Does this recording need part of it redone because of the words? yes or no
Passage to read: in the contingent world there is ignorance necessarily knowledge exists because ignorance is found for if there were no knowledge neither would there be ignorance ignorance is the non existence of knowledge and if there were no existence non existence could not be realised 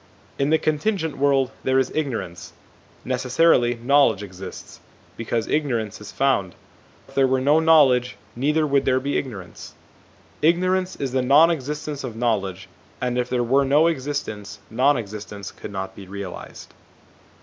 yes